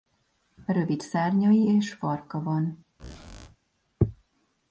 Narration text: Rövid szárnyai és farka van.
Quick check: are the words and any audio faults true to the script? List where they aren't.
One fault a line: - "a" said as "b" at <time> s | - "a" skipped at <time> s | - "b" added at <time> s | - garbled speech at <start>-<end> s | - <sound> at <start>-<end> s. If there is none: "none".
- squeak at 3.0-3.6 s